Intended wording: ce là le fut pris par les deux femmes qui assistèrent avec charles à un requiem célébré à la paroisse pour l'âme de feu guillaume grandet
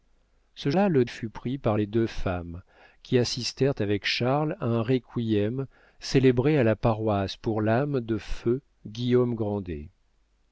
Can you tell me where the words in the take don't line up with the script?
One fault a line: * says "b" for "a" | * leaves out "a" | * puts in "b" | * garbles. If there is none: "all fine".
all fine